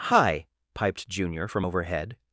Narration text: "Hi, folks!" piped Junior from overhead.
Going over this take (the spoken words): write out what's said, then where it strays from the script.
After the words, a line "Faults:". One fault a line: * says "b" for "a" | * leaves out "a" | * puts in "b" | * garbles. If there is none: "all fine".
"Hi, piped Junior from overhead.
Faults:
* leaves out "folks"